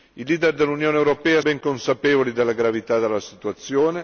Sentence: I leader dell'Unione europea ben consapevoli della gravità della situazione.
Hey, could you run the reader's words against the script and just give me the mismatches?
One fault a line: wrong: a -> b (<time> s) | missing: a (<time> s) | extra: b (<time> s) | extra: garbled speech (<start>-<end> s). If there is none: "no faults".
no faults